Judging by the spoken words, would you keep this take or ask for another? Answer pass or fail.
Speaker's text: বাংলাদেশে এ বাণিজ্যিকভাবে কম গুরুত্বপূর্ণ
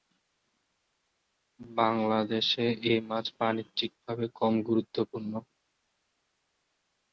fail